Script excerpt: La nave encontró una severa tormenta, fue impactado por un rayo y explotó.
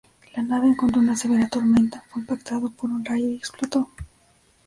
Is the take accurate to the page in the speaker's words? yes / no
yes